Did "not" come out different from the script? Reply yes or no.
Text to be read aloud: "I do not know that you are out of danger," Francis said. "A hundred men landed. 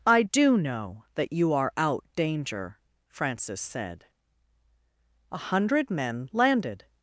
yes